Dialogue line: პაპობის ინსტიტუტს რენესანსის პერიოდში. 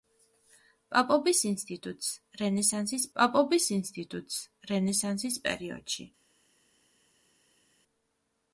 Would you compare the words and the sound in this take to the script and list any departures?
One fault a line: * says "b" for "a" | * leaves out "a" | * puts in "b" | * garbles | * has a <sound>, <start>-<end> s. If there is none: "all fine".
* puts in "პაპობის ინსტიტუტს რენესანსის"